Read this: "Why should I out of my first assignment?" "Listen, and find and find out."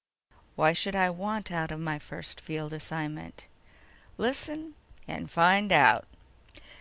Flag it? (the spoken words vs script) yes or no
yes